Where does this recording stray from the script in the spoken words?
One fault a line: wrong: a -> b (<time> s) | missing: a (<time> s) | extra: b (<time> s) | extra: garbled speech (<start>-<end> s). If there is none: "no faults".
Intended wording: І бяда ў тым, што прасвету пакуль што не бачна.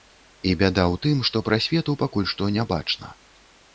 no faults